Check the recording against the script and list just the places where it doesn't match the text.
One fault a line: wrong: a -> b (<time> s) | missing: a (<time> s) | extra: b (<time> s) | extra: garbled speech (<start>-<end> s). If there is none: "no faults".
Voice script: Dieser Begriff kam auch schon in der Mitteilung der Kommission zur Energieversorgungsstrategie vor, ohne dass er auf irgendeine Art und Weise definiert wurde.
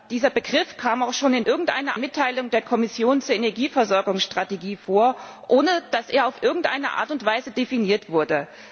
wrong: der -> irgendeine (1.5 s)